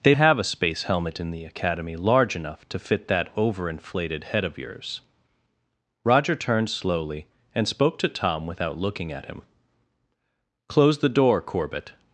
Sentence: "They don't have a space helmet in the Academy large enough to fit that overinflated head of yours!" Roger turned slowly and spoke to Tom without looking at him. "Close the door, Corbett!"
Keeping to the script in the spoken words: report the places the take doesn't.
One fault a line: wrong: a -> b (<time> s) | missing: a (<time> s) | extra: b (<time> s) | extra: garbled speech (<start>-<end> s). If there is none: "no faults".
missing: don't (0.1 s)